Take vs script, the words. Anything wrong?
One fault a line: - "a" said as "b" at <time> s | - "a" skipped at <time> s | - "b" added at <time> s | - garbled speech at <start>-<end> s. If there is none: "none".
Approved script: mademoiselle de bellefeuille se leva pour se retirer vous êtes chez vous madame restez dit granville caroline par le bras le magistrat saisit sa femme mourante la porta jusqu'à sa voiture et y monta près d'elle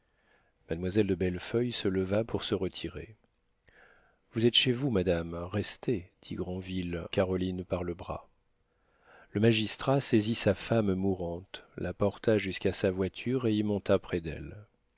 none